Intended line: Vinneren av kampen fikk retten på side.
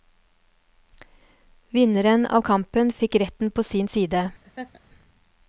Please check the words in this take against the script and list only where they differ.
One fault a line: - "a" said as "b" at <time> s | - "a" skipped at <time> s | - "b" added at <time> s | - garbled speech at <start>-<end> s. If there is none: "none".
- "sin" added at 3.6 s